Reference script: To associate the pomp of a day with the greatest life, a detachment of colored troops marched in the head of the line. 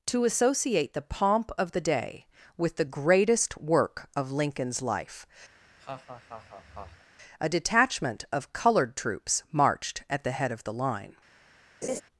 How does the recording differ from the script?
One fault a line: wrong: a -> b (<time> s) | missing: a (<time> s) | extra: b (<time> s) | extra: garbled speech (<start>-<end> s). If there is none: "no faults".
wrong: a -> the (1.7 s)
extra: work of Lincoln's (3.6 s)
wrong: in -> at (10.1 s)